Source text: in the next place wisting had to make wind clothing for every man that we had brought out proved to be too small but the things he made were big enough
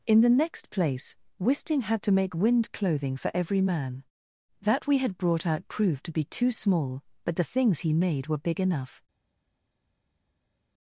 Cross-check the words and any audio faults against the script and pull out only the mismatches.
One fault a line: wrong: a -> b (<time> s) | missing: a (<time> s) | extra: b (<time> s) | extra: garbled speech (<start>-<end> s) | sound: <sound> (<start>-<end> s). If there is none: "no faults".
no faults